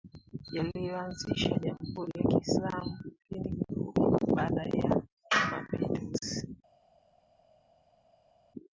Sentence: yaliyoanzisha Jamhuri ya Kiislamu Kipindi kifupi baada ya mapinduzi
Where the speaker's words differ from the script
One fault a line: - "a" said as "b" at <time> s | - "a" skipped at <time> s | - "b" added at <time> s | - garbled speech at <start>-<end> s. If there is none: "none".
none